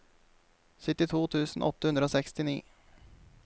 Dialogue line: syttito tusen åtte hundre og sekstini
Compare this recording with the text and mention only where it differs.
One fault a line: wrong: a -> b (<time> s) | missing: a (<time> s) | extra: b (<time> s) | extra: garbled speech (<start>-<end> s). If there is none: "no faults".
no faults